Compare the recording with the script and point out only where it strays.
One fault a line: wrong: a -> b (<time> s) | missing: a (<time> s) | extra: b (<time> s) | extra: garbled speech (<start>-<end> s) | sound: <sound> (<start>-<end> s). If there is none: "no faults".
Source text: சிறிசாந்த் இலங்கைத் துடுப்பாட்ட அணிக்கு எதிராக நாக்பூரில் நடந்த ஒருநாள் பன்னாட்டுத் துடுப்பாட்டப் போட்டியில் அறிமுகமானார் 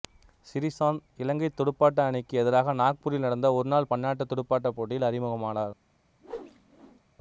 sound: whoosh (6.2-7.0 s)